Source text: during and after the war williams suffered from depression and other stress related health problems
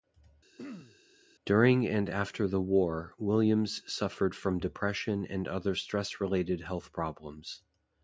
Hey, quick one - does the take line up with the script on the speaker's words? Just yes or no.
yes